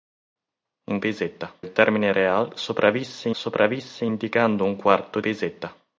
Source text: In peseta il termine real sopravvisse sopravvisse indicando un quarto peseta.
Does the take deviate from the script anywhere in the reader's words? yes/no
no